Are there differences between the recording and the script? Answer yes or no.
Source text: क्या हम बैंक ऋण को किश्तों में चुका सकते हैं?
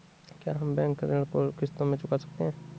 no